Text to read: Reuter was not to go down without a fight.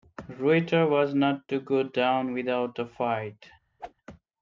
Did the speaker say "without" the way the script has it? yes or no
yes